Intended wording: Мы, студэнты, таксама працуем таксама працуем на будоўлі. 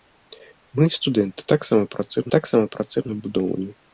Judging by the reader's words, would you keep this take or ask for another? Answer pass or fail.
pass